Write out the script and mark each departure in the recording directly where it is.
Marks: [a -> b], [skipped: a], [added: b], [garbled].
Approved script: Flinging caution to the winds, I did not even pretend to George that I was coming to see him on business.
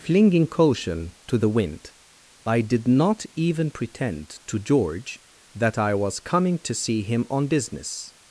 Flinging caution to the [winds, -> wind] I did not even pretend to George that I was coming to see him on business.